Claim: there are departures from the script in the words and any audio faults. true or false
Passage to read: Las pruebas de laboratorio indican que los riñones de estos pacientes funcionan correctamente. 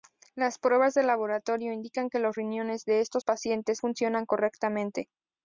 false